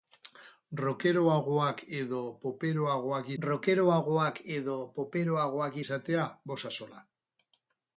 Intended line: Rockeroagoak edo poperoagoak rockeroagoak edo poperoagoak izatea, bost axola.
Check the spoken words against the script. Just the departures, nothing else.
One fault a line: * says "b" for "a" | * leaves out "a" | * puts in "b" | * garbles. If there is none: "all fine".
all fine